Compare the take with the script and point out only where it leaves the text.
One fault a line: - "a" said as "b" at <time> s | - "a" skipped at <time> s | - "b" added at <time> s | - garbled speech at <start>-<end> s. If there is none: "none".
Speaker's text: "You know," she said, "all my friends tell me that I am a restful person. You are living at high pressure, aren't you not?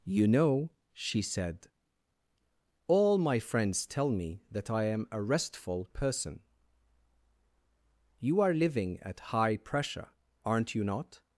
none